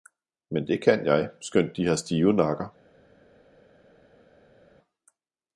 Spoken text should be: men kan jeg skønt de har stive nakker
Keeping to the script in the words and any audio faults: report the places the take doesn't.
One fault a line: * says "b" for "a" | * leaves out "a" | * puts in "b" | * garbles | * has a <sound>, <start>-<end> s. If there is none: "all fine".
* puts in "det"